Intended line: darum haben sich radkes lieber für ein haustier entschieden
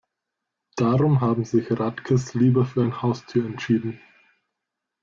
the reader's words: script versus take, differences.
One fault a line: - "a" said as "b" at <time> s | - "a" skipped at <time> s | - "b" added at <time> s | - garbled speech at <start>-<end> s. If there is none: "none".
none